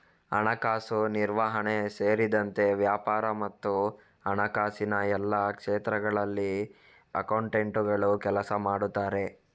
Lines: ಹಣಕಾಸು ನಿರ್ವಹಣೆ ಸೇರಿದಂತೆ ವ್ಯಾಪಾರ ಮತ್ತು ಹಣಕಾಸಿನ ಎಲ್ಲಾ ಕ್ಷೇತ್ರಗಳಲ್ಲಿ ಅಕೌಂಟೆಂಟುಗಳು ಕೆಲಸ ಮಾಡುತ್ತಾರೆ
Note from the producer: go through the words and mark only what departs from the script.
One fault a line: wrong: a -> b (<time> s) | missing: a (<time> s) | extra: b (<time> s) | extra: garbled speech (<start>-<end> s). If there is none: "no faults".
no faults